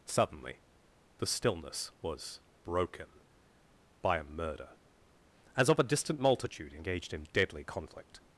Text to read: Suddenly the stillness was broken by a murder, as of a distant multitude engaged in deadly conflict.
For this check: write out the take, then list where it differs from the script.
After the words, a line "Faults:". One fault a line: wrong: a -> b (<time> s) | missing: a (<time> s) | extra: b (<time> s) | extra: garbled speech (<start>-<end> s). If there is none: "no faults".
Suddenly the stillness was broken by a murder, as of a distant multitude engaged in deadly conflict.
Faults:
no faults